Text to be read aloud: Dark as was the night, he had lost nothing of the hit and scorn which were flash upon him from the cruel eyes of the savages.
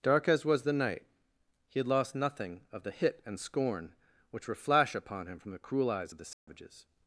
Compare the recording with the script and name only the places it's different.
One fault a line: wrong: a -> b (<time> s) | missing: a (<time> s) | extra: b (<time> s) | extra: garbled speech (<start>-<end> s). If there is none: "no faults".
no faults